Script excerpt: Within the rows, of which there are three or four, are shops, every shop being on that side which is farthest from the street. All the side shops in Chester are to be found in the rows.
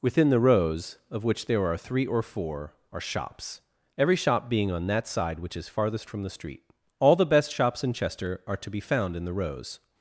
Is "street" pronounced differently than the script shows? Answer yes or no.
no